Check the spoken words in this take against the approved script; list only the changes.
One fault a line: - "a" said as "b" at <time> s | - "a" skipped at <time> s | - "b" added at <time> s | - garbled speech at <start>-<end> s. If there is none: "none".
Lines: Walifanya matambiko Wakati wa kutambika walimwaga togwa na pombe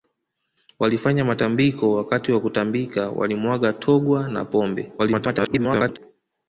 - garbled speech at 5.0-6.0 s